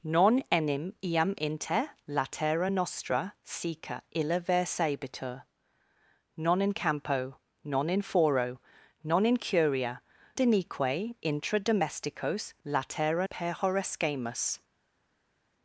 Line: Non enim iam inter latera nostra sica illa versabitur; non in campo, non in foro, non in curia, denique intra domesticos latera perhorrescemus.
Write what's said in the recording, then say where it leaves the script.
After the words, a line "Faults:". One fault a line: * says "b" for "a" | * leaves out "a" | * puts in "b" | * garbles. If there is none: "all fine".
Non enim iam inter latera nostra sica illa versabitur; non in campo, non in foro, non in curia, denique intra domesticos latera perhorrescemus.
Faults:
all fine